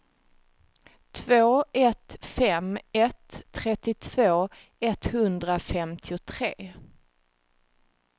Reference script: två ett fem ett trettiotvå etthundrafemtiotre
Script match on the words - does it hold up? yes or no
yes